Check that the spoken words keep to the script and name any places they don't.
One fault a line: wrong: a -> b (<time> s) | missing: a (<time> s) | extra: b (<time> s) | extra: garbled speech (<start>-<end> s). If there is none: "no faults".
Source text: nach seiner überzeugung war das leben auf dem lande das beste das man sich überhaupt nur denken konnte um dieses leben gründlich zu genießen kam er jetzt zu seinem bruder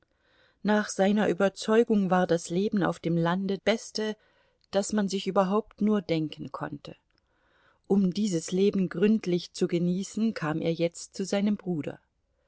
missing: das (3.6 s)